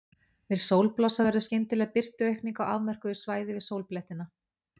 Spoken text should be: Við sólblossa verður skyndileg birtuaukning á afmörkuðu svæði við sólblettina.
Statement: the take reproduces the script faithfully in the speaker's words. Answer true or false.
true